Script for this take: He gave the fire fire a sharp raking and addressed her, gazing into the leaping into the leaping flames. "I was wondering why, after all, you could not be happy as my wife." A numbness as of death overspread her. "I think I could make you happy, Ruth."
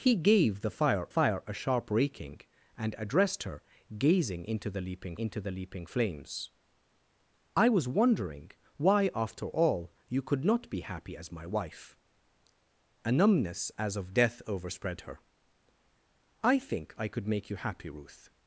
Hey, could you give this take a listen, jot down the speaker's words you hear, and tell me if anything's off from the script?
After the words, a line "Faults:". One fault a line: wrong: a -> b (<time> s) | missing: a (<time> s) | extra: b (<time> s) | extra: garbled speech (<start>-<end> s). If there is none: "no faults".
He gave the fire fire a sharp raking and addressed her, gazing into the leaping into the leaping flames. "I was wondering why, after all, you could not be happy as my wife." A numbness as of death overspread her. "I think I could make you happy, Ruth."
Faults:
no faults